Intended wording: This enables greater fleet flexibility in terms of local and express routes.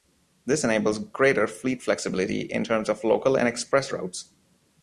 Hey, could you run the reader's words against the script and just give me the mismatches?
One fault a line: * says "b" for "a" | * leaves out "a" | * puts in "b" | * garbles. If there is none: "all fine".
all fine